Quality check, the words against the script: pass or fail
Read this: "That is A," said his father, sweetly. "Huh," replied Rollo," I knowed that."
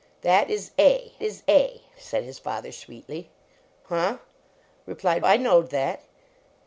fail